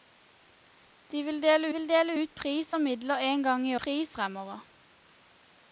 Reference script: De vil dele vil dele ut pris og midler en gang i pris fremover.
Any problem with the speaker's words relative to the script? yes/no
no